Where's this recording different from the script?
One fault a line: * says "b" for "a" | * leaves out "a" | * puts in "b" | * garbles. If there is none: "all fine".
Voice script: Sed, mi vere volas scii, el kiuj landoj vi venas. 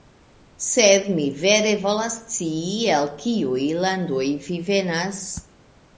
all fine